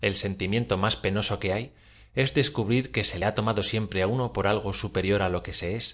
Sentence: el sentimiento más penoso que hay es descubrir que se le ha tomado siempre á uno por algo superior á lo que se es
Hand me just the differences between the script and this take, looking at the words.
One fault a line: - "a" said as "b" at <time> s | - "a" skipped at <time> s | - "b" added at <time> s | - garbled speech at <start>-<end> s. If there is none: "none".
- "le" skipped at 3.2 s